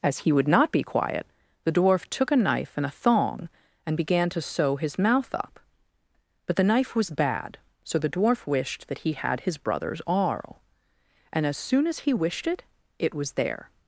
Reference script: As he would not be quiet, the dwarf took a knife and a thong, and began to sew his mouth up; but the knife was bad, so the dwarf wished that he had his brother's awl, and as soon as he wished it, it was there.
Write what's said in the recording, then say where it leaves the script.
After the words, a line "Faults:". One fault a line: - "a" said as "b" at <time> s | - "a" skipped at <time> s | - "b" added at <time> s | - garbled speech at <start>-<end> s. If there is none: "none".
As he would not be quiet, the dwarf took a knife and a thong, and began to sew his mouth up; but the knife was bad, so the dwarf wished that he had his brother's awl, and as soon as he wished it, it was there.
Faults:
none